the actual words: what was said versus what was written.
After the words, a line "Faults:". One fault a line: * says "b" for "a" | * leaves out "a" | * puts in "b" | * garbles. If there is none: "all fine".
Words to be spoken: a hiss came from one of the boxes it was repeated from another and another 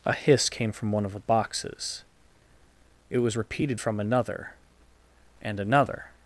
a hiss came from one of the boxes it was repeated from another and another
Faults:
all fine